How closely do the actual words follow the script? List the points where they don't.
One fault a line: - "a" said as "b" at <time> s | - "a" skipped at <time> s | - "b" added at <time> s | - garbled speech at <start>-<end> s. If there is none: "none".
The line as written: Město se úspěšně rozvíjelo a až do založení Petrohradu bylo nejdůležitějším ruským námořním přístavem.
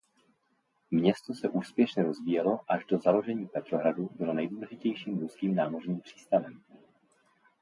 none